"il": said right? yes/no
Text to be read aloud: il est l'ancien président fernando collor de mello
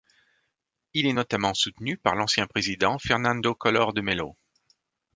yes